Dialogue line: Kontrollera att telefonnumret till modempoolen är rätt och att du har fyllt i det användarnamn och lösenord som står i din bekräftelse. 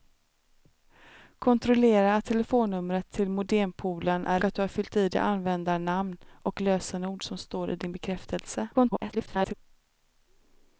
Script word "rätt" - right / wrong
wrong